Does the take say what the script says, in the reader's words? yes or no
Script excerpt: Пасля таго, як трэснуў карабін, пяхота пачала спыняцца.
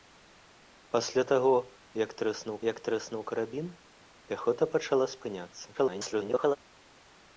no